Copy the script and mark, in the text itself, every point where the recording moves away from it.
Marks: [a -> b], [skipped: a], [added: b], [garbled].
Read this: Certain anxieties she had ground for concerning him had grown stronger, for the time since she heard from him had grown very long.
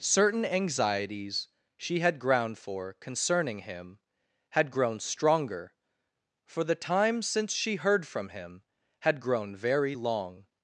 Certain anxieties she had ground for concerning him had grown stronger, for the time since she heard from him had grown very long.